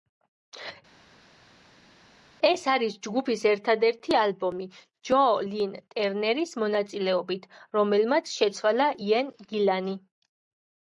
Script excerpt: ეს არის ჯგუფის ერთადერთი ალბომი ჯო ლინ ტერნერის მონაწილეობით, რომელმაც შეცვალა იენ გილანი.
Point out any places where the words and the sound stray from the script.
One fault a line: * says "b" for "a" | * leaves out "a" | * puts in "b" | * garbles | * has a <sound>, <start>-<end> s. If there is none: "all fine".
all fine